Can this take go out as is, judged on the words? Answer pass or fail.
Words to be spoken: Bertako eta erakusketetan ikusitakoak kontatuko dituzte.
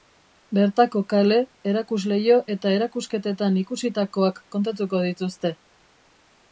fail